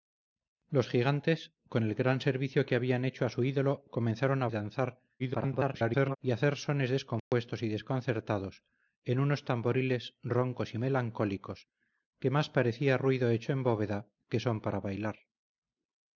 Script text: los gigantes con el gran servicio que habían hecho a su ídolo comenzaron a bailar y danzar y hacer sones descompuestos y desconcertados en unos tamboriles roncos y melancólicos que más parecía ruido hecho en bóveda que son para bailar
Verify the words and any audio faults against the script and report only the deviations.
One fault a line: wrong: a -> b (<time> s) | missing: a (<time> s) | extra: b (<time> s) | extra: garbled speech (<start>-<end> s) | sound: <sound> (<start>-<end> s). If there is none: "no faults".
missing: bailar (4.5 s)
extra: garbled speech (5.2-6.2 s)
sound: dropout (7.2-7.3 s)